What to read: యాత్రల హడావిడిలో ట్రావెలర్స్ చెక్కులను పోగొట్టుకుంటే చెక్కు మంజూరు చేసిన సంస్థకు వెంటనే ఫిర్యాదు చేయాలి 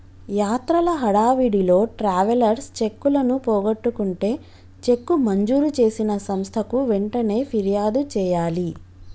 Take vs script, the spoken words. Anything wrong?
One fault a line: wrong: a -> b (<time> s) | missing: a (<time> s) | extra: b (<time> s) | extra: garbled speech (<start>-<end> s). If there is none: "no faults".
no faults